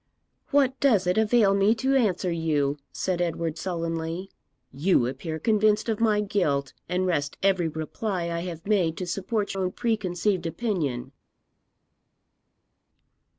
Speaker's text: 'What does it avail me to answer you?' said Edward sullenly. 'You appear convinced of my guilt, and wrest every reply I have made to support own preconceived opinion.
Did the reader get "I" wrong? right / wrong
right